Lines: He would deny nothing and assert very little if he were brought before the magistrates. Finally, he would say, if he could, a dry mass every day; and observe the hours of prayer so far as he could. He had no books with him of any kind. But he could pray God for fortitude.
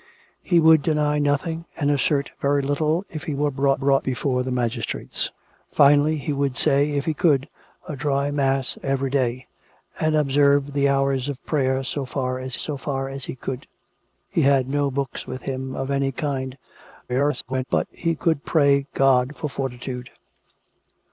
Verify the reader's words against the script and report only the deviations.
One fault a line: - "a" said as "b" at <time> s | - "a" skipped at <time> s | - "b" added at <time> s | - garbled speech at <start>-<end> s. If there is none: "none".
- "brought" added at 3.7 s
- "so far as" added at 12.6 s
- garbled speech at 17.1-17.6 s